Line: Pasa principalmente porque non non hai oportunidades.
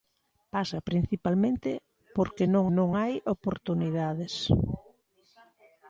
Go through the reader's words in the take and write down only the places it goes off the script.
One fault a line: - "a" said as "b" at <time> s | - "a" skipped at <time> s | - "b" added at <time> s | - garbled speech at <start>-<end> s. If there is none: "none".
none